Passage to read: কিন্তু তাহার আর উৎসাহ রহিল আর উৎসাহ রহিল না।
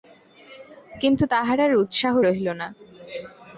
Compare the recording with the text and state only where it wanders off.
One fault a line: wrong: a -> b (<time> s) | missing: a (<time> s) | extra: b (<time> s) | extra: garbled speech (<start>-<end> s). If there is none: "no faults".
missing: আর উৎসাহ রহিল (2.5 s)